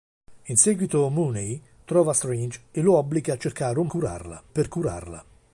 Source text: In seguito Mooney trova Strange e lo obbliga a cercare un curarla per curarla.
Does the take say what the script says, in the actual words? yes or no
yes